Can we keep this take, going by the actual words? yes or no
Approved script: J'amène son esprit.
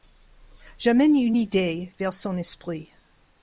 no